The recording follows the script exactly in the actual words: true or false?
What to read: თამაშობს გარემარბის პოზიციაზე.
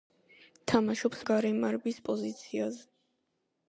true